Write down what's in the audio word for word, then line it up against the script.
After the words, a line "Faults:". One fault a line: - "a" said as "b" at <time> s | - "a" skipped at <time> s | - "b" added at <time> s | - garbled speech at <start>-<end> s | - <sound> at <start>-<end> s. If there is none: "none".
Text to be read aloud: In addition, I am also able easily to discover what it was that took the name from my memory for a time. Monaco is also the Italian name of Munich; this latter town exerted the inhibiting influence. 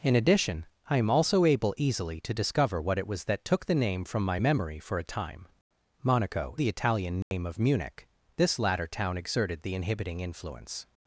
In addition, I am also able easily to discover what it was that took the name from my memory for a time. Monaco the Italian name of Munich; this latter town exerted the inhibiting influence.
Faults:
- "is also" skipped at 6.6 s
- dropout at 7.2-7.3 s